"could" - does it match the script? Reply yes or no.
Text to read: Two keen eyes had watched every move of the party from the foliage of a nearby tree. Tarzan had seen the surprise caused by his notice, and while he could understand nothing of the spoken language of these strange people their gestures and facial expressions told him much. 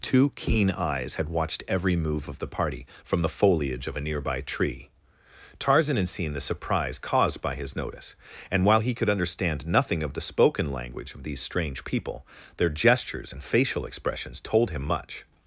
yes